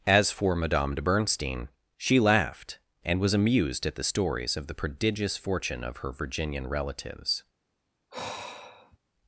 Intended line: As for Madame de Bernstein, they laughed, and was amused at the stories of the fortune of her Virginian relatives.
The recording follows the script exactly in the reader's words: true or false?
false